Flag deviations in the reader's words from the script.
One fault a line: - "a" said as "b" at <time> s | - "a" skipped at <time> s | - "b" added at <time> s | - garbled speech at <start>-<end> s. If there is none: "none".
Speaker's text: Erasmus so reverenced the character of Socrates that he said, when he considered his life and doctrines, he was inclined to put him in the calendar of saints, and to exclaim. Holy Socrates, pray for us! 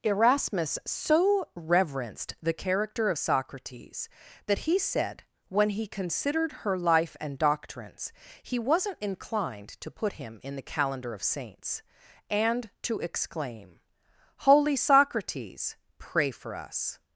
- "his" said as "her" at 6.6 s
- "was" said as "wasn't" at 8.6 s